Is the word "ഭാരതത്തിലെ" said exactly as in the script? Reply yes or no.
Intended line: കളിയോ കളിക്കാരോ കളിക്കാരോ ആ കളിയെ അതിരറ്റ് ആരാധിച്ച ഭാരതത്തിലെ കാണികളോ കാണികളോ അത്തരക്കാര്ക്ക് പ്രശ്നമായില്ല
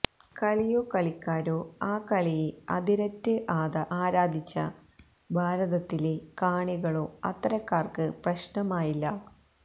yes